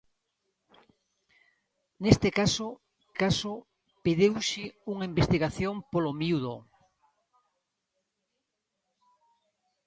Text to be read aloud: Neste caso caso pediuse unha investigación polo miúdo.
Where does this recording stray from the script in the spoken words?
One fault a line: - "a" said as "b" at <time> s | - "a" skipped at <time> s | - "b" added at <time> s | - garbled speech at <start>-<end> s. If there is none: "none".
none